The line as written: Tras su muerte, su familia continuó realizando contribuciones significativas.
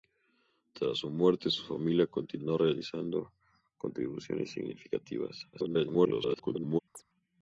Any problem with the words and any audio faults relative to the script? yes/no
yes